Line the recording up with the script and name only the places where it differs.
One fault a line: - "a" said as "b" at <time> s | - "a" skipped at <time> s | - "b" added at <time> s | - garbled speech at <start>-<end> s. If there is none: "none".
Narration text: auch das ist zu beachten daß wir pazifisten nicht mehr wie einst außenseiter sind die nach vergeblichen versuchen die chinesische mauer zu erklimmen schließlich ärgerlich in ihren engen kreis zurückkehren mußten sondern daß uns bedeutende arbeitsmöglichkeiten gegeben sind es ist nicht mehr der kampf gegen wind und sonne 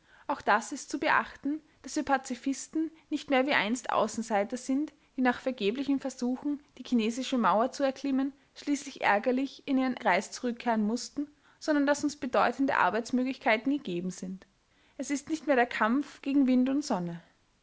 - "engen" skipped at 10.0 s